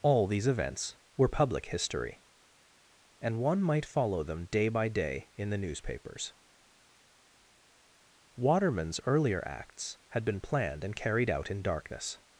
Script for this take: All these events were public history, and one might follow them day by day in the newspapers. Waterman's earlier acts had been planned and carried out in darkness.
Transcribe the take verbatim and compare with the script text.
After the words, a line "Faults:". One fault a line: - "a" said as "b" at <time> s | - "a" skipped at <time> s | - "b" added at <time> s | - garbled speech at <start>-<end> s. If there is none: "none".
All these events were public history, and one might follow them day by day in the newspapers. Waterman's earlier acts had been planned and carried out in darkness.
Faults:
none